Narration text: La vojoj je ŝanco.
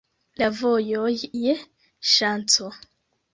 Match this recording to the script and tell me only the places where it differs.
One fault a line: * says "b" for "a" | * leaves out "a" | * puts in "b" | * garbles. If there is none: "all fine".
all fine